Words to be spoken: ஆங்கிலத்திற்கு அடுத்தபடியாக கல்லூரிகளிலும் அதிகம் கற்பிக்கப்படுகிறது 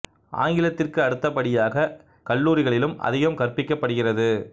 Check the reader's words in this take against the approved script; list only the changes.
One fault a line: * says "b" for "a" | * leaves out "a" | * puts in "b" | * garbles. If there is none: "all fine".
all fine